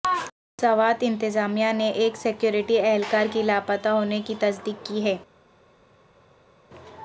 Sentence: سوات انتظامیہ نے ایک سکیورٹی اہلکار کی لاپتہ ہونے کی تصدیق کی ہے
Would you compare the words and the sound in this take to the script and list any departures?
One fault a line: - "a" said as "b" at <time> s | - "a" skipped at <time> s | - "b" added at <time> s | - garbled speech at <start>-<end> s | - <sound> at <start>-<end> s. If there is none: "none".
none